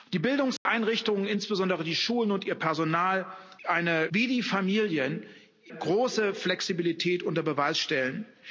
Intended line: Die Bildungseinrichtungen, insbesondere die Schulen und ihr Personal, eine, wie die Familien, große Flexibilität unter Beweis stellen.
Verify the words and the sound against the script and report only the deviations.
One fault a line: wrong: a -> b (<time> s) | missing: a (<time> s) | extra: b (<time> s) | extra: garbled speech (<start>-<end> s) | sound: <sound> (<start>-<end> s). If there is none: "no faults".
sound: dropout (0.6-0.7 s)